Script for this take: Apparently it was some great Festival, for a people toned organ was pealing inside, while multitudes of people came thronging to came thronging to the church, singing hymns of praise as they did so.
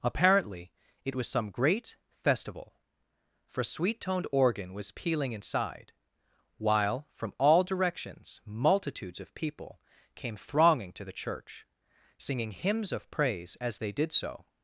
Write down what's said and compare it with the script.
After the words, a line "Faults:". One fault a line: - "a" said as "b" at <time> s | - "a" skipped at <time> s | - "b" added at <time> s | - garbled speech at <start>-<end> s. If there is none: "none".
Apparently it was some great Festival, for a sweet toned organ was pealing inside, while from all directions multitudes of people came thronging to the church, singing hymns of praise as they did so.
Faults:
- "people" said as "sweet" at 3.6 s
- "from all directions" added at 7.1 s
- "came thronging to" skipped at 11.0 s